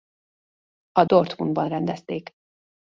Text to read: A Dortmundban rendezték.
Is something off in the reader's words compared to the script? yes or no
no